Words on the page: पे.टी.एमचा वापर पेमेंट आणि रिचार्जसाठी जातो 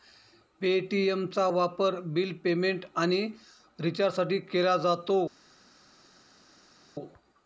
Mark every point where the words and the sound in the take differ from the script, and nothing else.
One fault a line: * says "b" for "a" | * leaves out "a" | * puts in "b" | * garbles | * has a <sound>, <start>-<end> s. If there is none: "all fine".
* puts in "बिल"
* puts in "केला"